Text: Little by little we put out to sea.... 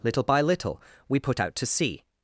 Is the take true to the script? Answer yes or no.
yes